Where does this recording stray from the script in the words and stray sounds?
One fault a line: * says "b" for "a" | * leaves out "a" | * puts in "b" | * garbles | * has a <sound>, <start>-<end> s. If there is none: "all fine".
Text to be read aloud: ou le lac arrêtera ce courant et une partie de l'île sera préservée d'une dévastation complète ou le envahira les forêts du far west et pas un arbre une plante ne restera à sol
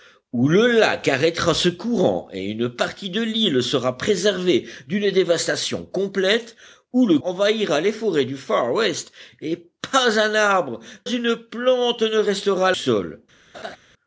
* has a laugh, 13.5-13.8 s